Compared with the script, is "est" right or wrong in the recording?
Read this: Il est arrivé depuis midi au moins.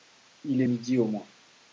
wrong